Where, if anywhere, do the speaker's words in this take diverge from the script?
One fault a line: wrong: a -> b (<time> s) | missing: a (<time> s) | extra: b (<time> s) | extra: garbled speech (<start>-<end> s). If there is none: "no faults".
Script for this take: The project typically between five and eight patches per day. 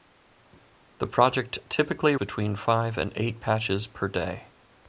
no faults